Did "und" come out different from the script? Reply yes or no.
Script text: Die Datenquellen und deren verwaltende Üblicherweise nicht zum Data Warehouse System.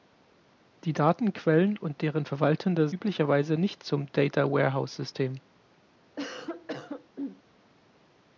no